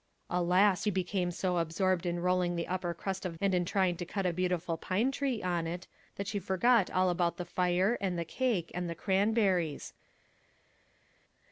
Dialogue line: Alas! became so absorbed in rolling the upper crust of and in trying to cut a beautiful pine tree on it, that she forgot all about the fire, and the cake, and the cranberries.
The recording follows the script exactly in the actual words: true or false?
true